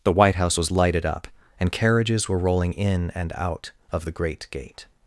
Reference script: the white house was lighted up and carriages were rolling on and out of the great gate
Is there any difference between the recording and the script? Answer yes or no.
yes